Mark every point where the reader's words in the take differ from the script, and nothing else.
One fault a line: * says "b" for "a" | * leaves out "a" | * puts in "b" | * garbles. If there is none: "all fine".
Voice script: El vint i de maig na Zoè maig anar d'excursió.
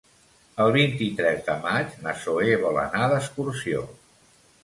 * puts in "tres"
* says "vol" for "maig"